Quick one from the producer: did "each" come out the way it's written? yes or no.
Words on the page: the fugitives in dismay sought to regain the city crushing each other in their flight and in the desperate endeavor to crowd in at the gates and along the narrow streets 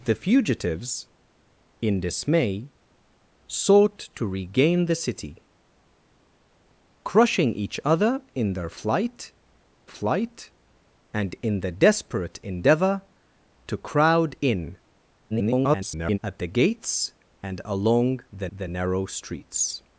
yes